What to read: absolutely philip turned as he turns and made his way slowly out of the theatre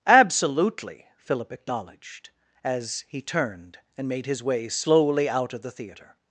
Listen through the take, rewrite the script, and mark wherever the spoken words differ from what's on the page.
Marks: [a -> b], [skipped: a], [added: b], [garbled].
absolutely philip [turned -> acknowledged] as he [turns -> turned] and made his way slowly out of the theatre